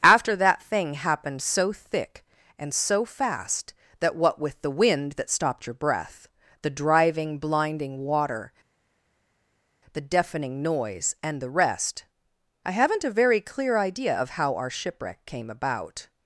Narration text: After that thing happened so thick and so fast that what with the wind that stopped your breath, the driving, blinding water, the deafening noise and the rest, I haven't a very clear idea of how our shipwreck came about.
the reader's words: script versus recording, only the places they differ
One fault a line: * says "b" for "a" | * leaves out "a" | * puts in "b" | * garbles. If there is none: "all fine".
all fine